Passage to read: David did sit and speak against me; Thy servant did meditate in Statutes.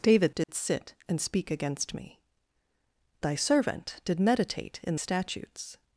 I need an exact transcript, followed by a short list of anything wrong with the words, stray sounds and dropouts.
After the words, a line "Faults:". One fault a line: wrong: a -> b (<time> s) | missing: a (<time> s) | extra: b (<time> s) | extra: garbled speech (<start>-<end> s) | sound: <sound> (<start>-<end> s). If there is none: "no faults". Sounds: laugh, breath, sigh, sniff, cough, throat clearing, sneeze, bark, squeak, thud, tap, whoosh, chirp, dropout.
David did sit and speak against me; Thy servant did meditate in Statutes.
Faults:
sound: dropout (0.4-0.5 s)